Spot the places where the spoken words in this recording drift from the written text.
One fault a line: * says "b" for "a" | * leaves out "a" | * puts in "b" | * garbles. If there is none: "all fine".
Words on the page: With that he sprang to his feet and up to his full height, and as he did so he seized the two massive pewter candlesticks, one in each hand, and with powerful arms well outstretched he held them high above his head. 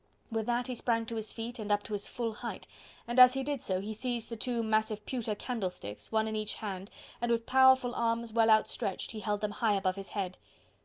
all fine